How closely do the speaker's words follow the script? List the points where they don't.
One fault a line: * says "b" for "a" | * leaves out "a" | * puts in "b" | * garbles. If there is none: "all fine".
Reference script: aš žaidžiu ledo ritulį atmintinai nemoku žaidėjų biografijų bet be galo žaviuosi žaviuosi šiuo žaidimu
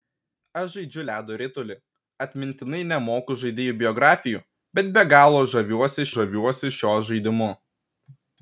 all fine